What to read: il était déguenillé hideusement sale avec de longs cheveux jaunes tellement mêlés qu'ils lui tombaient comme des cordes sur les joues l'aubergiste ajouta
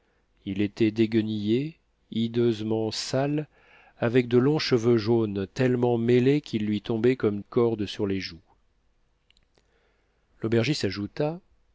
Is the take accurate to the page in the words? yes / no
no